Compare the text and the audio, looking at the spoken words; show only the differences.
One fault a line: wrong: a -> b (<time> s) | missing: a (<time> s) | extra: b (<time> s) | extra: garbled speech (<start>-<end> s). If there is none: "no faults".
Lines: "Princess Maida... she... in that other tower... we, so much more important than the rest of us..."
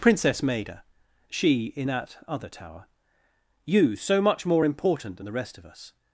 wrong: we -> you (3.7 s)